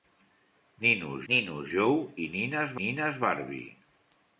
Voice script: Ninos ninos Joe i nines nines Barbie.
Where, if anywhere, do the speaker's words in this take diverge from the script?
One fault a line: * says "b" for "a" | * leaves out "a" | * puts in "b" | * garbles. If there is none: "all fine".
all fine